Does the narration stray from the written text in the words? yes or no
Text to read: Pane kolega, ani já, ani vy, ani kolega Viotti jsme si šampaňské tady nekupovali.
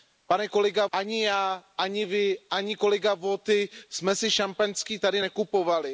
no